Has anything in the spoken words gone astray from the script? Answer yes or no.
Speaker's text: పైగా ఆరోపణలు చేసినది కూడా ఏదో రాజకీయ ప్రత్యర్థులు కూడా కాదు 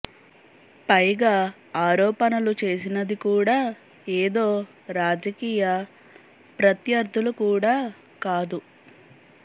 no